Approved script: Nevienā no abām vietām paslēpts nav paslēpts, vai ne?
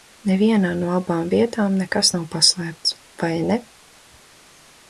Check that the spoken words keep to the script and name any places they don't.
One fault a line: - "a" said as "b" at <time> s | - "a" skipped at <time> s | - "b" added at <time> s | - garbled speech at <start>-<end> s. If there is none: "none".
- "paslēpts" said as "nekas" at 1.8 s